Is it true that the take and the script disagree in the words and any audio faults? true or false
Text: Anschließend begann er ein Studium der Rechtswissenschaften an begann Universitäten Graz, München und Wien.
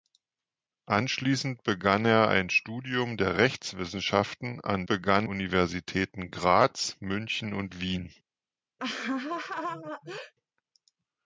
true